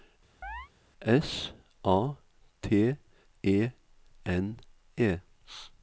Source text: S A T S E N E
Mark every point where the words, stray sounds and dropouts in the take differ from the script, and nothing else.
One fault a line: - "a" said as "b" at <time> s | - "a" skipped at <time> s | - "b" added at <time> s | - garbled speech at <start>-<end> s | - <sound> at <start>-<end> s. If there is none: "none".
- chirp at 0.4-0.7 s
- "S" skipped at 3.0 s